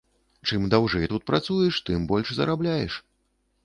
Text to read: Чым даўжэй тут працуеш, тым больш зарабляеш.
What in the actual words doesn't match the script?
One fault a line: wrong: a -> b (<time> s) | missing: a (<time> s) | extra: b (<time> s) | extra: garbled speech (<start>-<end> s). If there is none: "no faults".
no faults